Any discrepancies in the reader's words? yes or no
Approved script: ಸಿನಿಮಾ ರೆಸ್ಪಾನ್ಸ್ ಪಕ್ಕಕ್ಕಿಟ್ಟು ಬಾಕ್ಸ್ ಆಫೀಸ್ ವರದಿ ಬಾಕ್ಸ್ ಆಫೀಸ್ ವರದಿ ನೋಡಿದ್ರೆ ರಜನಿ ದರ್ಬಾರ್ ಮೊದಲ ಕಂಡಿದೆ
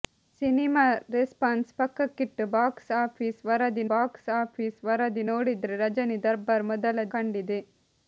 no